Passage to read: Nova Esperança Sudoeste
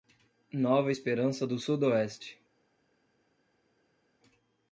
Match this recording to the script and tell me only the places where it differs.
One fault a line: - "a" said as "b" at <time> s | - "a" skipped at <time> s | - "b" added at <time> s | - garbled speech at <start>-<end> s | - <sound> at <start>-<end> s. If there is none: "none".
- "do" added at 1.4 s